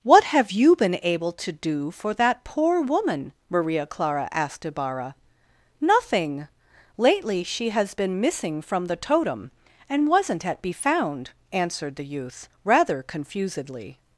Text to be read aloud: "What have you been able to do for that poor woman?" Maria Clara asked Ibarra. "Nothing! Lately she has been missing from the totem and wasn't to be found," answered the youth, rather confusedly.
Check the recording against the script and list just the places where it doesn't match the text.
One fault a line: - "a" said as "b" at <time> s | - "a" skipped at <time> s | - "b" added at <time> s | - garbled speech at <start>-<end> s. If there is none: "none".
- "to" said as "at" at 10.4 s